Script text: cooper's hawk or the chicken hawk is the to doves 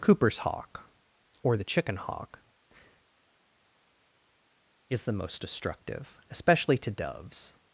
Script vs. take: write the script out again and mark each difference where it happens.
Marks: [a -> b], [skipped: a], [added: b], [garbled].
cooper's hawk or the chicken hawk is the [added: most destructive especially] to doves